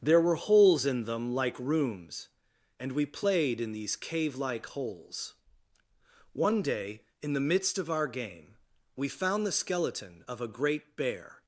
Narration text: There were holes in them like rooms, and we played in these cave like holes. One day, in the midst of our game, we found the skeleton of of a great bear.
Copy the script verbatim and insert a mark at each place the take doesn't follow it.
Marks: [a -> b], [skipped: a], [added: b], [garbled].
There were holes in them like rooms, and we played in these cave like holes. One day, in the midst of our game, we found the skeleton of [skipped: of] a great bear.